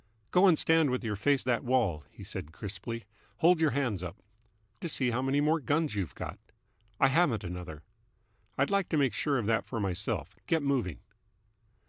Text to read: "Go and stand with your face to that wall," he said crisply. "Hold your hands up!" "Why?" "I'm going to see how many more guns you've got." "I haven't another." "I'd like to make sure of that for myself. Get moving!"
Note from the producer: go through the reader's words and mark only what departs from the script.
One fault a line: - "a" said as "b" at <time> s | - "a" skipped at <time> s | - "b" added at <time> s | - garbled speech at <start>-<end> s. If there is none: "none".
- "to" skipped at 1.4 s
- "Why I'm going" skipped at 4.2 s